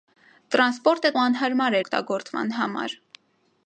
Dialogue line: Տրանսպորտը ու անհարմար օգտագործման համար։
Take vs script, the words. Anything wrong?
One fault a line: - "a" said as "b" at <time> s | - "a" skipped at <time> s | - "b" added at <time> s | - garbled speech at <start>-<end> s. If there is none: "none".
none